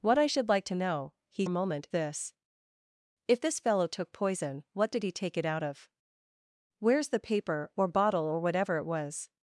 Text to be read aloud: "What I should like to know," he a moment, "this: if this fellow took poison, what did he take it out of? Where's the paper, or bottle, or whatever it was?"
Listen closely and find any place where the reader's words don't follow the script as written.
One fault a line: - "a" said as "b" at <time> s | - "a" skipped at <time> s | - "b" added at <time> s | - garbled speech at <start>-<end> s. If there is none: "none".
none